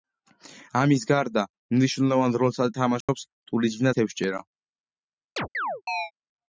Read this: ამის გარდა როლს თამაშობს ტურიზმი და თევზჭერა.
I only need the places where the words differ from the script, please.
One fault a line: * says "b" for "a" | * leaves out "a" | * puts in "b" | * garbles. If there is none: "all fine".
* puts in "მნიშვნელოვან"